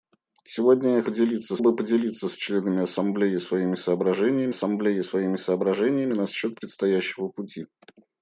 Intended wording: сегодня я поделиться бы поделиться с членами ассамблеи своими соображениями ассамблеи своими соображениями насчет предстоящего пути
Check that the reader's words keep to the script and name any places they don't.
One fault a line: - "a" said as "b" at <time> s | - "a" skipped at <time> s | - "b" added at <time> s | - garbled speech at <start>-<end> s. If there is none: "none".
none